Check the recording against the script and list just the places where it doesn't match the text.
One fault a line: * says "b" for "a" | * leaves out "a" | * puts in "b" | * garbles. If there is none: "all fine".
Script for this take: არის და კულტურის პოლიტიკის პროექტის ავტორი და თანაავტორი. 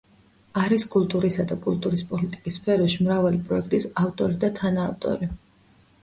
* puts in "კულტურისა"
* puts in "სფეროში მრავალი"